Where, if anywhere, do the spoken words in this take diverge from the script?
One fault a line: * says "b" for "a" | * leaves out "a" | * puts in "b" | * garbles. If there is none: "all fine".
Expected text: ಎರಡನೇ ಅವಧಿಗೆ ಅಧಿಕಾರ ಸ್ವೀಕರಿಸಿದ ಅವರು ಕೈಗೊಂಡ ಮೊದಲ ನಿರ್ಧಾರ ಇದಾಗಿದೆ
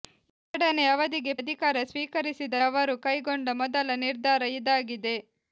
all fine